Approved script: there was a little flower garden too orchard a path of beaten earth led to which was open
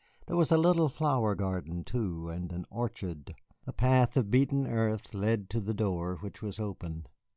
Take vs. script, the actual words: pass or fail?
fail